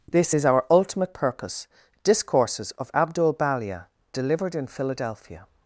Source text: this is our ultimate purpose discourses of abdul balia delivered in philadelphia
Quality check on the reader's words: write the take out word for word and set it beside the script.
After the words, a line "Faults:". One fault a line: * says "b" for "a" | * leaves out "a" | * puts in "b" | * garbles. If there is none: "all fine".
this is our ultimate purpose discourses of abdul balia delivered in philadelphia
Faults:
all fine